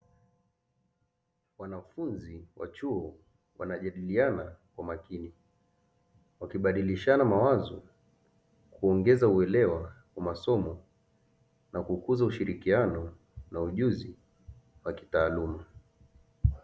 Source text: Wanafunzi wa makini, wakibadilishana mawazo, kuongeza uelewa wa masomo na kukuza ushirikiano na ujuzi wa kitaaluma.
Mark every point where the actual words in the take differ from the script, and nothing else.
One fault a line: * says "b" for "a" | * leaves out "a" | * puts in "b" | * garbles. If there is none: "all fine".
* puts in "chuo wanajadiliana kwa"